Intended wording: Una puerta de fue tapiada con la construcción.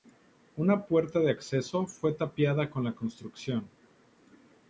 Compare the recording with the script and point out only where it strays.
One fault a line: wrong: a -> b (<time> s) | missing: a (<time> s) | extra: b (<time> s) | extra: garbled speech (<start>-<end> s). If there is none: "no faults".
extra: acceso (1.3 s)